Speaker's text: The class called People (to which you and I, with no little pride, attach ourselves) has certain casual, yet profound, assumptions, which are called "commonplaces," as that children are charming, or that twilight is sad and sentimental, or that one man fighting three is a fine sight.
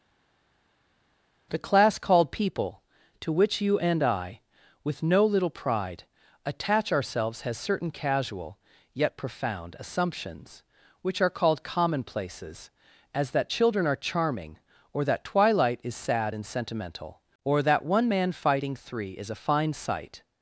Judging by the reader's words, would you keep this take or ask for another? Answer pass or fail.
pass